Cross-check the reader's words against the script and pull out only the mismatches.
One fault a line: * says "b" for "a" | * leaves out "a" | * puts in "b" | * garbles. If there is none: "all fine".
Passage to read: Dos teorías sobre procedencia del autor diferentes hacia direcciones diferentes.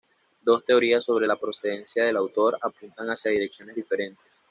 * puts in "la"
* says "apuntan" for "diferentes"